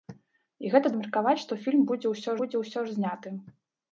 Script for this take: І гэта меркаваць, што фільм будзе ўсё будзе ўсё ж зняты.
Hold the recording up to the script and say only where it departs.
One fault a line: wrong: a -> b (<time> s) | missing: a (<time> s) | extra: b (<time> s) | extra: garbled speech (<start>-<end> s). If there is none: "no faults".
no faults